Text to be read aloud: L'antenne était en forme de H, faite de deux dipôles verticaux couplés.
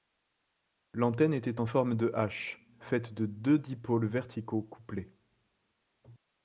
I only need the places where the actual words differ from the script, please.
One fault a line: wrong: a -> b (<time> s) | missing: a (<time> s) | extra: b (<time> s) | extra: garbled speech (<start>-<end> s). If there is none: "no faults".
no faults